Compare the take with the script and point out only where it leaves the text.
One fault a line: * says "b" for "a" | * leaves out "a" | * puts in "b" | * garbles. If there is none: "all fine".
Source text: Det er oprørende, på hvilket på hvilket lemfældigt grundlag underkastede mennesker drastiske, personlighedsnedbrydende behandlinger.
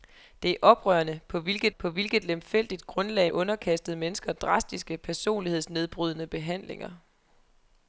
all fine